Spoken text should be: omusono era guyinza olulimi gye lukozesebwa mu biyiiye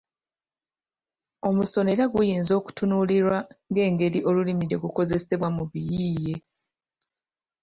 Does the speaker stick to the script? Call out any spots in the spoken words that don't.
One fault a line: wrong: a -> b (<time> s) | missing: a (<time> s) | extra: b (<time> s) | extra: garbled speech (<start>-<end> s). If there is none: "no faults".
extra: okutunuulirwa ng'engeri (2.6 s)